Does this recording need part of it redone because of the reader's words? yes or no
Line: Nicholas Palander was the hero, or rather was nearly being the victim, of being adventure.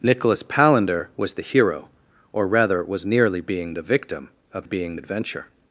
no